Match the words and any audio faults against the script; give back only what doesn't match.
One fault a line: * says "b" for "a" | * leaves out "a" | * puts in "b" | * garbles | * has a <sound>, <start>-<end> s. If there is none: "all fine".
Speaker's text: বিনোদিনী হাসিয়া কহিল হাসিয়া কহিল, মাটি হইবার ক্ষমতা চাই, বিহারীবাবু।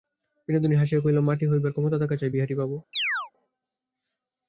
* leaves out "হাসিয়া কহিল"
* puts in "থাকা"
* has a chirp, 2.9-3.3 s